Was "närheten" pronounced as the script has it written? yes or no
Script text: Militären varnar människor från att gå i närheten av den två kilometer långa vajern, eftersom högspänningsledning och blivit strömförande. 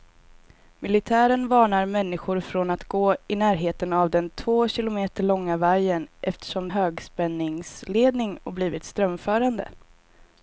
yes